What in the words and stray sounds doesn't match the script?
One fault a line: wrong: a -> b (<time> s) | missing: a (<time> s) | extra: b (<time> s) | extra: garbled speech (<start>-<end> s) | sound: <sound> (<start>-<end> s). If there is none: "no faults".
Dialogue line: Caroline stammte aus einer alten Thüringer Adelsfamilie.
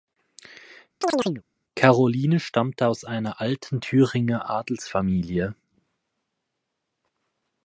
sound: chirp (1.0-1.4 s)